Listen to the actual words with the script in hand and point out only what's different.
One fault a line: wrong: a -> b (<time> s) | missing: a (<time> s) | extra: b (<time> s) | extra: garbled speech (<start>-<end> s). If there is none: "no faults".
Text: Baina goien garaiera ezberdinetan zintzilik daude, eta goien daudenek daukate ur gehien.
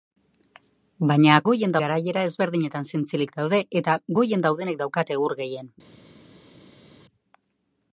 no faults